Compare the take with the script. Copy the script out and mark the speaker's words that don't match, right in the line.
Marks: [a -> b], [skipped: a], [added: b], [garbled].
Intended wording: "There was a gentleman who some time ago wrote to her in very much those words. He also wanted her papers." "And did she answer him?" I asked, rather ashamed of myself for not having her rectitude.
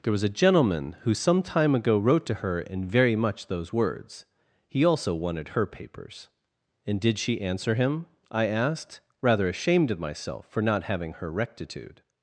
"There was a gentleman who some time ago wrote to her in very much those words. He also wanted her papers." "And did she answer him?" I asked, rather ashamed of myself for not having her rectitude.